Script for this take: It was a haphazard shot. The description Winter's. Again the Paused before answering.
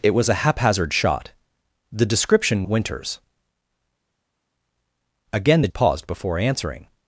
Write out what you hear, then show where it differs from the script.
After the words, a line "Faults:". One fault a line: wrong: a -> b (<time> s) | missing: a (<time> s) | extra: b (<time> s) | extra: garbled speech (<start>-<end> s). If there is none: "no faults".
It was a haphazard shot. The description Winter's. Again the Paused before answering.
Faults:
no faults